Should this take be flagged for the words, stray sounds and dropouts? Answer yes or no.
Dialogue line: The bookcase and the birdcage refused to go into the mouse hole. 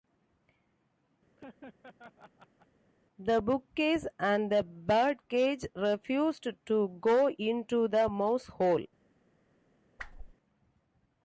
yes